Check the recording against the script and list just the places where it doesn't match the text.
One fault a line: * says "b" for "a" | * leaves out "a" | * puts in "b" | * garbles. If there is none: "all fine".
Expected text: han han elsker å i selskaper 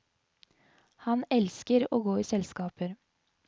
* leaves out "han"
* puts in "gå"